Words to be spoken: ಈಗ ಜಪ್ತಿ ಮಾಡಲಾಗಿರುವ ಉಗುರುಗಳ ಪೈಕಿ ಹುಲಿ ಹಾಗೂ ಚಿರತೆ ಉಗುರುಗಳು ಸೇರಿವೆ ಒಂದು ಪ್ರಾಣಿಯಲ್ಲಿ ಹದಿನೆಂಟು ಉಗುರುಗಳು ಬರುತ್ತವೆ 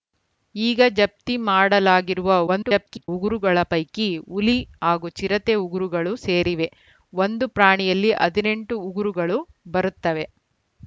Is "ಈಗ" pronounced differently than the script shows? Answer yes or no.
no